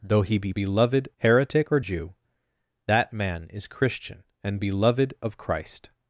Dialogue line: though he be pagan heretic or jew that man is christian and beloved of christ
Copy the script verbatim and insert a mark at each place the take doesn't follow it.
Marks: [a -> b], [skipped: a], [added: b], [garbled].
though he be [pagan -> beloved] heretic or jew that man is christian and beloved of christ